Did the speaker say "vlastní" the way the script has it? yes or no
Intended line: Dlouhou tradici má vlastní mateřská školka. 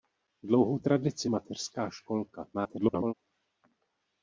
no